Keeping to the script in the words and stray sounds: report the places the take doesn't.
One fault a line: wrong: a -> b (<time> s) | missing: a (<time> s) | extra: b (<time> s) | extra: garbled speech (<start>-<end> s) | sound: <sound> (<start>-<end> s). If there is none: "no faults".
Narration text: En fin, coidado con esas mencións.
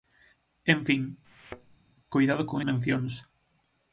sound: thud (1.2-1.8 s)
missing: esas (2.6 s)